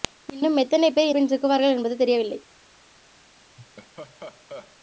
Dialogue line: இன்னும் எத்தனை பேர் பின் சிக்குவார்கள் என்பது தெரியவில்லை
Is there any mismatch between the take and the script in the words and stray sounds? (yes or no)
yes